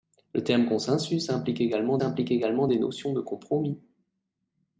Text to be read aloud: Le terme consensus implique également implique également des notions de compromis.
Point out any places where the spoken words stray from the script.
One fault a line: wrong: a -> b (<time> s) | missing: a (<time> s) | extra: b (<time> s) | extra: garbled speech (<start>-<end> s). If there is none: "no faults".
no faults